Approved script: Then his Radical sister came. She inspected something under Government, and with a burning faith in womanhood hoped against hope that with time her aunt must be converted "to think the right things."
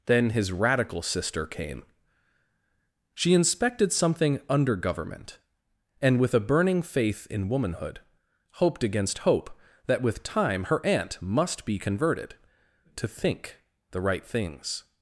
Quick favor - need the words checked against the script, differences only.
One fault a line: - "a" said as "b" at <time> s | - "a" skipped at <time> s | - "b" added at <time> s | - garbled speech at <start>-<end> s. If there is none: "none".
none